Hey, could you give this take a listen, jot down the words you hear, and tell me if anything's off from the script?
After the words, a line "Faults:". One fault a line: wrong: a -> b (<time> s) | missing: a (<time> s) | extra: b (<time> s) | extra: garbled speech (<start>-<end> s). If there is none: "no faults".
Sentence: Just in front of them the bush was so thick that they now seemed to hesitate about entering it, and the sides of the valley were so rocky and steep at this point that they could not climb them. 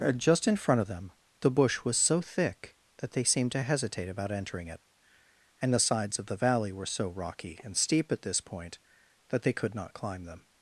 Just in front of them the bush was so thick that they seemed to hesitate about entering it, and the sides of the valley were so rocky and steep at this point that they could not climb them.
Faults:
missing: now (3.2 s)